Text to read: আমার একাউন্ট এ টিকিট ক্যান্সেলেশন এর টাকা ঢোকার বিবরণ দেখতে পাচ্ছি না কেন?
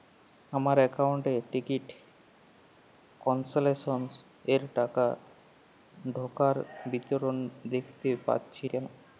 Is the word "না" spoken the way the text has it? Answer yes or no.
no